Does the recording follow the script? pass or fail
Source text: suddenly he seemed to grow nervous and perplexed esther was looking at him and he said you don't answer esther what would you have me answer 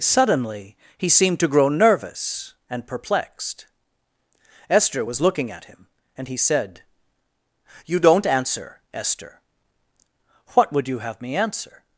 pass